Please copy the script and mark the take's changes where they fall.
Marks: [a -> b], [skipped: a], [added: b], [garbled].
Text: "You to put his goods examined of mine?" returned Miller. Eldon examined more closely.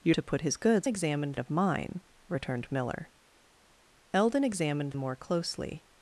"You to put his goods examined of mine?" returned Miller. Eldon examined more closely.